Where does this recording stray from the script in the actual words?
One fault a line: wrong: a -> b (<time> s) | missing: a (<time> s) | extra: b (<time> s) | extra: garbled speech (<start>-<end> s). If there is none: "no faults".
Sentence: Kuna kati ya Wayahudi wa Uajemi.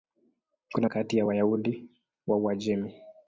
no faults